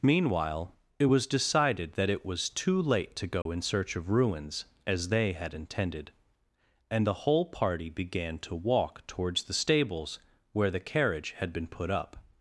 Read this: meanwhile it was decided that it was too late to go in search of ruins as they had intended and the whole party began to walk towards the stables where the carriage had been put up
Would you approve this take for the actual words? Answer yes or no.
yes